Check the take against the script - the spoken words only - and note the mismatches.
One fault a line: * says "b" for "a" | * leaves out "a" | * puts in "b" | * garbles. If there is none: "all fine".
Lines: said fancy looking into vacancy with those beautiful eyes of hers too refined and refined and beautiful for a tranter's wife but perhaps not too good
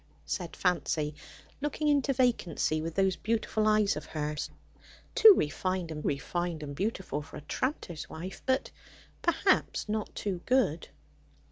all fine